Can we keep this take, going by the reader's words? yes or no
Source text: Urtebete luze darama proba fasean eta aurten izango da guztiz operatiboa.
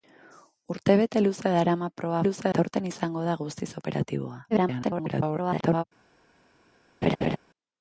no